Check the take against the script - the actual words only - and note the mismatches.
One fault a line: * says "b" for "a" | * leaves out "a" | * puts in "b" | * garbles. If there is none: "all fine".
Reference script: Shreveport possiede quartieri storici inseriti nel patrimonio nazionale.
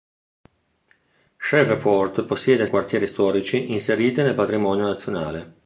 all fine